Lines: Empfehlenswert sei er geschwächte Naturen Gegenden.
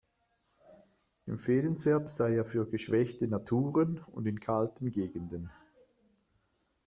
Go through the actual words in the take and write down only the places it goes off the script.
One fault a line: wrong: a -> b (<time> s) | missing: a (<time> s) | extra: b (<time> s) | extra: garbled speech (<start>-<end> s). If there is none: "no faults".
extra: für (2.5 s)
extra: und in kalten (4.0 s)